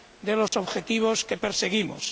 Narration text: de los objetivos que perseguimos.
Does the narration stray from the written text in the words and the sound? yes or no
yes